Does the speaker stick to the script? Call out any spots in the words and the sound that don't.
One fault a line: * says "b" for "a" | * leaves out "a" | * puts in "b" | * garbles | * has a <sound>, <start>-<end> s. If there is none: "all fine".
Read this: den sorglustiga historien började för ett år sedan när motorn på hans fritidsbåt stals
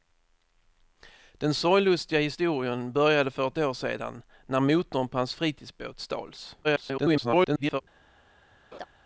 * garbles
* has a laugh, 8.7-8.9 s